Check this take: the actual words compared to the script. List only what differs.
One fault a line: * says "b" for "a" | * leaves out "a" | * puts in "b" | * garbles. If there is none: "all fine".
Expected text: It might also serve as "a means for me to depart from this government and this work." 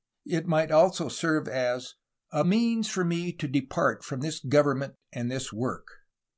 all fine